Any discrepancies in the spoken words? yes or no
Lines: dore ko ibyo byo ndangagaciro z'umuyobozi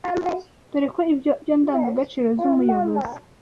no